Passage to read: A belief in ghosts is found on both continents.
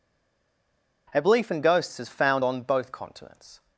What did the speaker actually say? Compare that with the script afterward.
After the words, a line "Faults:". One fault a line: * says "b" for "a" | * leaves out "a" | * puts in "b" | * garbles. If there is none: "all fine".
A belief in ghosts is found on both continents.
Faults:
all fine